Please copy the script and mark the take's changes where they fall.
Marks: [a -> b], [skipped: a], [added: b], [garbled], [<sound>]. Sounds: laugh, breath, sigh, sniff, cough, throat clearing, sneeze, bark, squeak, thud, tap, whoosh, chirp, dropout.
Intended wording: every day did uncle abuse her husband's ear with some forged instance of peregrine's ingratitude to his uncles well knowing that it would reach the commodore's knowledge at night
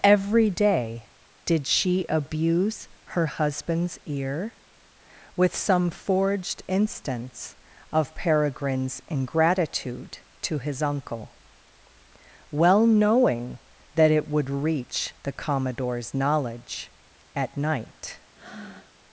every day did [uncle -> she] abuse her husband's ear with some forged instance of peregrine's ingratitude to his [uncles -> uncle] well knowing that it would reach the commodore's knowledge at night [breath]